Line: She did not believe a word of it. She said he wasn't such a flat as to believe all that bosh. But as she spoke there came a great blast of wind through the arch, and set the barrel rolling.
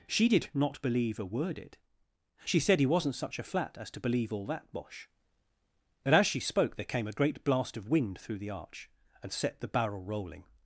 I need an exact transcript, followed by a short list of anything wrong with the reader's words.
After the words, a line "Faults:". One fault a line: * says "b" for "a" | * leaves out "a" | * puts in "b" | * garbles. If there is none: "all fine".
She did not believe a word it. She said he wasn't such a flat as to believe all that bosh. But as she spoke there came a great blast of wind through the arch, and set the barrel rolling.
Faults:
* leaves out "of"